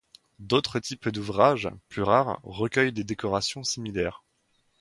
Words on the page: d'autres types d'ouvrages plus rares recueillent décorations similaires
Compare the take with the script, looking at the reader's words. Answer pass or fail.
fail